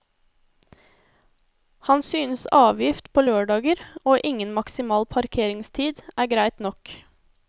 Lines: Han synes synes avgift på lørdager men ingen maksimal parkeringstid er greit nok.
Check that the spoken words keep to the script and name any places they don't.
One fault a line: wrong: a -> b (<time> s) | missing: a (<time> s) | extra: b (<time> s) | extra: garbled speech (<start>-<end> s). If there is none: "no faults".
missing: synes (2.5 s)
wrong: men -> og (4.0 s)